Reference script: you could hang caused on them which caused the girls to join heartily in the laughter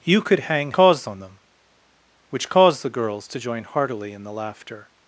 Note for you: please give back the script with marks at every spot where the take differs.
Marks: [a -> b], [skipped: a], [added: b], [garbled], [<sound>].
you could hang caused on them which caused the girls to join heartily in the laughter